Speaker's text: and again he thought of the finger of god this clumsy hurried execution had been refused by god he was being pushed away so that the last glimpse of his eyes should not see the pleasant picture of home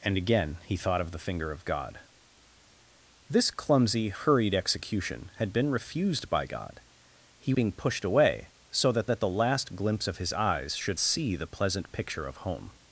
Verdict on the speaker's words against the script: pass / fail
fail